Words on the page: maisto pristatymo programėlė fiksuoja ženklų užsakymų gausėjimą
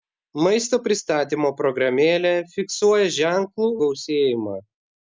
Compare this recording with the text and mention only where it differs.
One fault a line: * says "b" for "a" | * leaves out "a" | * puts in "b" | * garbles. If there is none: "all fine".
* leaves out "užsakymų"